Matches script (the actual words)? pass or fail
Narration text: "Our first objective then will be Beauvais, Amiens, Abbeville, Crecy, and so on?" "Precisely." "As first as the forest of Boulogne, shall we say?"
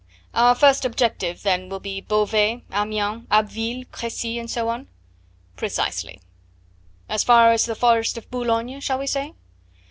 fail